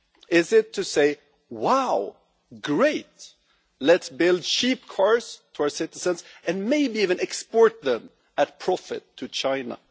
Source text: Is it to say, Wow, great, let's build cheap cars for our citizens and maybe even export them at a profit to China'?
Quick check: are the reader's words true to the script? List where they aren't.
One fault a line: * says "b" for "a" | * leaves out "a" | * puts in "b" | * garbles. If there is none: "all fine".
all fine